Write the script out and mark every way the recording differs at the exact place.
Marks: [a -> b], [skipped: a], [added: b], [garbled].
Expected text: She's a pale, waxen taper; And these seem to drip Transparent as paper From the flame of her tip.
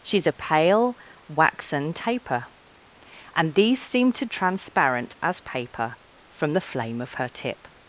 She's a pale, waxen taper; And these seem to [skipped: drip] Transparent as paper From the flame of her tip.